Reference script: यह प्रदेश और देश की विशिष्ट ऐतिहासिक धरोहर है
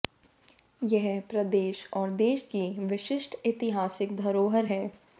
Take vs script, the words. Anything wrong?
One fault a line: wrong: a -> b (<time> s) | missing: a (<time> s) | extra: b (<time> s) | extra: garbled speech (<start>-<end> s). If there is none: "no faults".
no faults